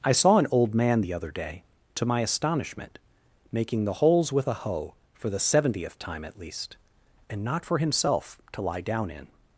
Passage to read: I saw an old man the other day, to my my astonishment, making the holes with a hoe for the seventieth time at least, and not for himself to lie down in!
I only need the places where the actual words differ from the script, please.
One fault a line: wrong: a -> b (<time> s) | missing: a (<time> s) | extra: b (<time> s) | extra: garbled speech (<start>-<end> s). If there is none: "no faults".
missing: my (2.2 s)